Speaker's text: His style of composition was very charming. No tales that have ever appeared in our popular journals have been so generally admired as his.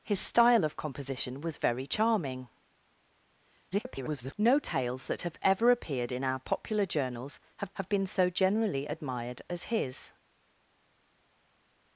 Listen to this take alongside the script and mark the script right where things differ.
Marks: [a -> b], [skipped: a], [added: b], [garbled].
His style of composition was very charming. [garbled] No tales that have ever appeared in our popular journals have [added: have] been so generally admired as his.